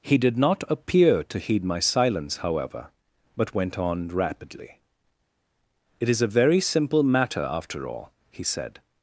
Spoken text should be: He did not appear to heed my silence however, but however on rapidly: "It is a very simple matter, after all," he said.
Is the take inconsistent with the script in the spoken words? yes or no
yes